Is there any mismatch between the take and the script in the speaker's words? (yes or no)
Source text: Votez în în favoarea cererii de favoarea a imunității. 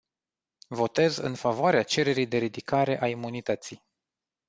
yes